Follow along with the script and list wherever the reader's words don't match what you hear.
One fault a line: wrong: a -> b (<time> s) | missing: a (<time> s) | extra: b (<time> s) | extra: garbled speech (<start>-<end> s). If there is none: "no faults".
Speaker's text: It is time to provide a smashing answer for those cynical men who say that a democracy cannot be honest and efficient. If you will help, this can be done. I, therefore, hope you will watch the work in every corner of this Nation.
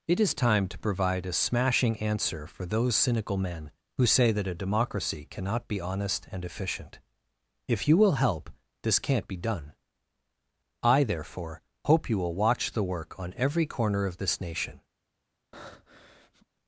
wrong: can -> can't (9.0 s)
wrong: in -> on (13.2 s)